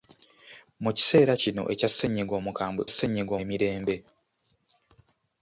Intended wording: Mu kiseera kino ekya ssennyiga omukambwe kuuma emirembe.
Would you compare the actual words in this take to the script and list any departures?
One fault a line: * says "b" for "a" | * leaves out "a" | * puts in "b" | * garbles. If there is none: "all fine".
* says "ssennyiga" for "kuuma"